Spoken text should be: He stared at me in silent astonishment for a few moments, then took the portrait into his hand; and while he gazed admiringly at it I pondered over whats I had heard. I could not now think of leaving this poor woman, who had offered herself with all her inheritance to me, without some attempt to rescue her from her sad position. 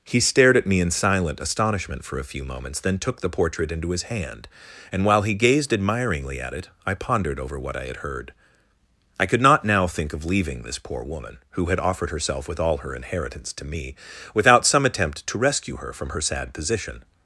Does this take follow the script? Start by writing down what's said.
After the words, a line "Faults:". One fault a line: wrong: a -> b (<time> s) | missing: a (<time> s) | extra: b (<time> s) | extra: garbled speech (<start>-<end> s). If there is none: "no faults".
He stared at me in silent astonishment for a few moments, then took the portrait into his hand; and while he gazed admiringly at it I pondered over what I had heard. I could not now think of leaving this poor woman, who had offered herself with all her inheritance to me, without some attempt to rescue her from her sad position.
Faults:
wrong: whats -> what (7.6 s)